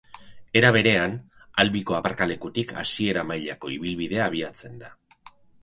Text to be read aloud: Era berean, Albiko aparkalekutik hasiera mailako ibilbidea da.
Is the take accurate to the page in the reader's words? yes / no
no